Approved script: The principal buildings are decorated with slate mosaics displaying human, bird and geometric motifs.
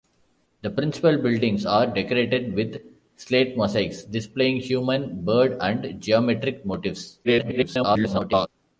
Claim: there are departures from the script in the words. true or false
true